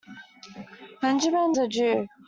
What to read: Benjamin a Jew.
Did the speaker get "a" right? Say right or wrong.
right